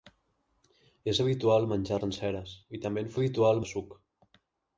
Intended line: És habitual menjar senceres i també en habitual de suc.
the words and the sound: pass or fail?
pass